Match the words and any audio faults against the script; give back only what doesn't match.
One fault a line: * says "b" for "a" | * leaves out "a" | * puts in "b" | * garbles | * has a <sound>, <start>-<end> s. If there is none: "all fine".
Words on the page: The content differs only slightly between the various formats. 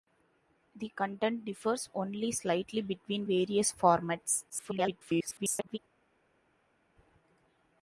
* leaves out "the"
* garbles